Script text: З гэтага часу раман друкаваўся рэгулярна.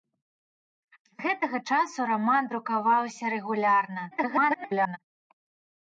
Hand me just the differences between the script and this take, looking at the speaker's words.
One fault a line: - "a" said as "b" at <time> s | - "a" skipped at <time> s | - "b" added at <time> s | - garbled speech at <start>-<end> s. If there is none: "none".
- garbled speech at 4.1-5.0 s